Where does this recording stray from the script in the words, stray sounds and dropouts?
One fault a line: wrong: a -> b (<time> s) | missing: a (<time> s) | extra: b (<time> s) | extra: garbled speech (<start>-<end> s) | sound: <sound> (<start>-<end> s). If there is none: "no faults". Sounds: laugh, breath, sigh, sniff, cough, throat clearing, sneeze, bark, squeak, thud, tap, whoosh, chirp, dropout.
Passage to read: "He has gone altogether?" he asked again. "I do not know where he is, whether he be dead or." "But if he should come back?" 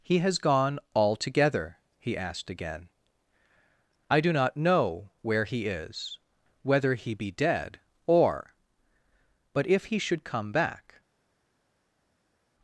no faults